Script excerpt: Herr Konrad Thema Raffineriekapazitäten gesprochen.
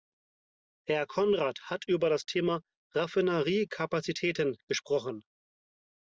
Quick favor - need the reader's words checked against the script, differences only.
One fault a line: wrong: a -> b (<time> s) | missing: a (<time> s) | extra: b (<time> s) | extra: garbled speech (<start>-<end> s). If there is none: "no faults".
extra: hat über das (1.7 s)